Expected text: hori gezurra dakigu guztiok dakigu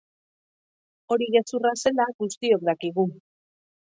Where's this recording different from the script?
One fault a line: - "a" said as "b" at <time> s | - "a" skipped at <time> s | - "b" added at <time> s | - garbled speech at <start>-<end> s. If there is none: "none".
- "dakigu" said as "zela" at 1.9 s